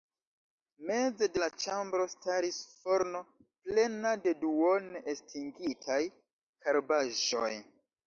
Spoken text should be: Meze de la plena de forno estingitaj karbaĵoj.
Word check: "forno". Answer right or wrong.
wrong